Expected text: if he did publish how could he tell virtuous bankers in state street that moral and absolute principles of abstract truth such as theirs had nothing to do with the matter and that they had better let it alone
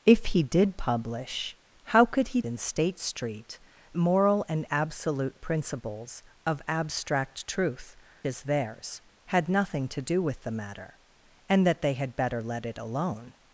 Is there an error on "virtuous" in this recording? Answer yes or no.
yes